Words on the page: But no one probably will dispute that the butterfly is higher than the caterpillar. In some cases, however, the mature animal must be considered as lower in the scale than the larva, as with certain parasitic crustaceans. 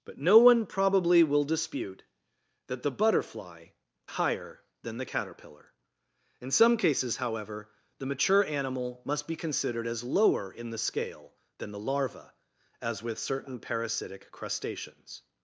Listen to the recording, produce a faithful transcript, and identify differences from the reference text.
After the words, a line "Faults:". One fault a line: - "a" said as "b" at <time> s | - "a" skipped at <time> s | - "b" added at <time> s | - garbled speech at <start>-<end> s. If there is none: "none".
But no one probably will dispute that the butterfly higher than the caterpillar. In some cases, however, the mature animal must be considered as lower in the scale than the larva, as with certain parasitic crustaceans.
Faults:
- "is" skipped at 3.7 s